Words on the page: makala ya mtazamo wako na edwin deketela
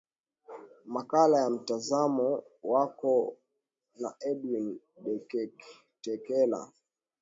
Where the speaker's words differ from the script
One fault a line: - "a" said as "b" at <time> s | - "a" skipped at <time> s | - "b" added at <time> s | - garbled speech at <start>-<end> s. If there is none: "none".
none